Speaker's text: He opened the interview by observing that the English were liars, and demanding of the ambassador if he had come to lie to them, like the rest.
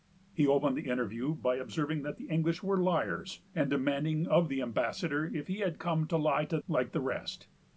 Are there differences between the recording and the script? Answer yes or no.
yes